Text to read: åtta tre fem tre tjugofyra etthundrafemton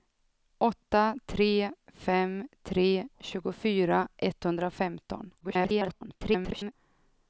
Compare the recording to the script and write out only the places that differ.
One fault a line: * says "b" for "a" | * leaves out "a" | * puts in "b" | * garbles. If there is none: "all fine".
* garbles